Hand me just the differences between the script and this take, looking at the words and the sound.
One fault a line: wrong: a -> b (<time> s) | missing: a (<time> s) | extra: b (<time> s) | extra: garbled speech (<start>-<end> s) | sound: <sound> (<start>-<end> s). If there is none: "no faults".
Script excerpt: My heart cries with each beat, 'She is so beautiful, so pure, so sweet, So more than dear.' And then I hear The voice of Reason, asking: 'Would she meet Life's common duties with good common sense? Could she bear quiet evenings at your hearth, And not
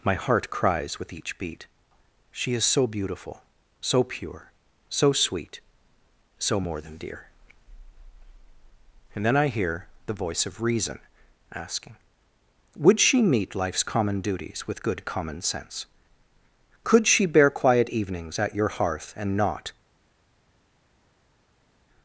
no faults